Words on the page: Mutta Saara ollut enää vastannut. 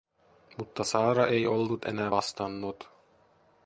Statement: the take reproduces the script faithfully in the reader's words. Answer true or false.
false